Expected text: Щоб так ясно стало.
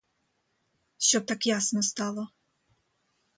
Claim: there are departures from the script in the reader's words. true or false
false